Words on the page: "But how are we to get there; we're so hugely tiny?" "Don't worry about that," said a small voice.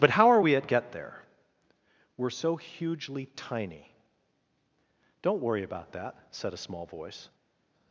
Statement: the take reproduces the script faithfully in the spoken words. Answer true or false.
false